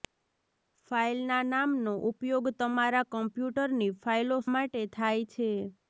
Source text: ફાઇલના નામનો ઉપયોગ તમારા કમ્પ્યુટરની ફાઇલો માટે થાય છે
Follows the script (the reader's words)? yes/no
yes